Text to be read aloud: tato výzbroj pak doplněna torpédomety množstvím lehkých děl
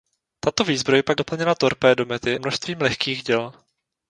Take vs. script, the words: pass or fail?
pass